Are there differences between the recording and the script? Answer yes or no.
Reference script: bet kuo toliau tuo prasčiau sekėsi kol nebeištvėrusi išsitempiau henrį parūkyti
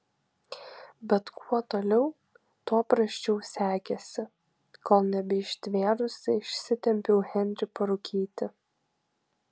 no